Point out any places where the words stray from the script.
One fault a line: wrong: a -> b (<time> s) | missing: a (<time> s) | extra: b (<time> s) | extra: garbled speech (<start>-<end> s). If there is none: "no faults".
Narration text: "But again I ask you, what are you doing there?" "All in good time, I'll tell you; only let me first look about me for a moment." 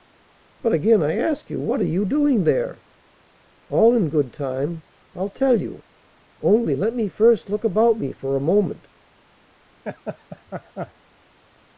no faults